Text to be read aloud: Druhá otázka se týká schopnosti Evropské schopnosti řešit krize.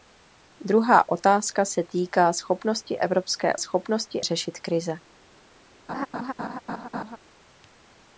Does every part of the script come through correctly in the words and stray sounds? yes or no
no